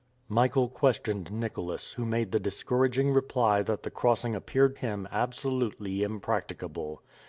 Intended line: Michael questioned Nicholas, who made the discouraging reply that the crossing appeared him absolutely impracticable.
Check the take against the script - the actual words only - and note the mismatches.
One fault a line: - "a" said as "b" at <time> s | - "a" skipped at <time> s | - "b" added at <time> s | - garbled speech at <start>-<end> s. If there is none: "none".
none